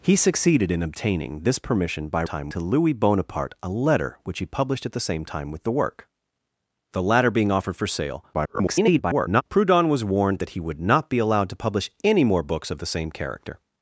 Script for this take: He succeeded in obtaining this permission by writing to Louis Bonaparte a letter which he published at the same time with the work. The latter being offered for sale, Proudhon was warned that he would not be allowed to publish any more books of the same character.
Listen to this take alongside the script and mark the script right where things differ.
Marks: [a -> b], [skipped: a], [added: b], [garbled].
He succeeded in obtaining this permission by [writing -> time] to Louis Bonaparte a letter which he published at the same time with the work. The latter being offered for sale, [garbled] Proudhon was warned that he would not be allowed to publish any more books of the same character.